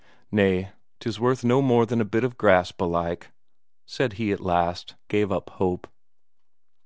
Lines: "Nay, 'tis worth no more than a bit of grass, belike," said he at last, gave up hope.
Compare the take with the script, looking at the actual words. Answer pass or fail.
pass